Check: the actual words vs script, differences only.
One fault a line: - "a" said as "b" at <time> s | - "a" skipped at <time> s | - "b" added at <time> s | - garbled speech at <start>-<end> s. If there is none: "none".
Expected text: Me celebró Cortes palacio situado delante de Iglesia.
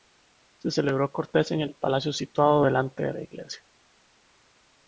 - "Me" said as "Se" at 0.6 s
- "en el" added at 1.5 s
- "la" added at 3.1 s